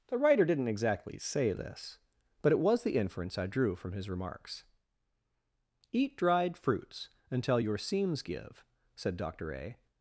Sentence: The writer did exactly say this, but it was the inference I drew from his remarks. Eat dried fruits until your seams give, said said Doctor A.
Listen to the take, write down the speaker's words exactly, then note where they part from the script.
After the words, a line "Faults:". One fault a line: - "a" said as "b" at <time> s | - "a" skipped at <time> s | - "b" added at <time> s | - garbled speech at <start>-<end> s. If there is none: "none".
The writer didn't exactly say this, but it was the inference I drew from his remarks. Eat dried fruits until your seams give, said Doctor A.
Faults:
- "did" said as "didn't" at 0.5 s
- "said" skipped at 9.2 s